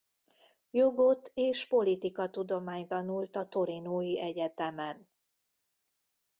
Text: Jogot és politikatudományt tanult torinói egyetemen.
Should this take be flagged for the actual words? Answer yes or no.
yes